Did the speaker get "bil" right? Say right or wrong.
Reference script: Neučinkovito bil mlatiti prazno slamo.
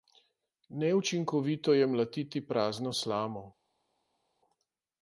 wrong